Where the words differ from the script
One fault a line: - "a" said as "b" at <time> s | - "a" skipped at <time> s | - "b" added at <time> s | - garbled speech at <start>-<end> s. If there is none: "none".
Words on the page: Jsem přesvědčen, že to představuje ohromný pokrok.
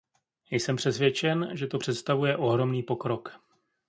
none